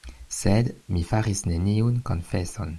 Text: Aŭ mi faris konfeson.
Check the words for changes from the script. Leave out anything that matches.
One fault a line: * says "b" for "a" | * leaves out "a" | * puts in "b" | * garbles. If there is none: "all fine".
* says "Sed" for "Aŭ"
* puts in "neniun"